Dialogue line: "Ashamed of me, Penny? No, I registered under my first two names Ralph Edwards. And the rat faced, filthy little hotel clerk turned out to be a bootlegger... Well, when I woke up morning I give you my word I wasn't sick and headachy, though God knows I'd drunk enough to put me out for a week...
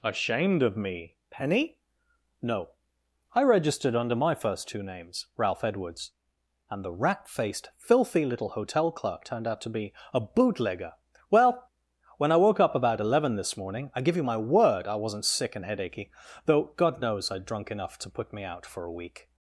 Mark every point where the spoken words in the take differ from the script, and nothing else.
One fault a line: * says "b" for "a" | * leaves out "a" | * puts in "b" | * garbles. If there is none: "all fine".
* puts in "about eleven this"